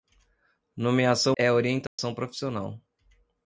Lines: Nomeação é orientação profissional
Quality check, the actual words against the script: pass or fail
pass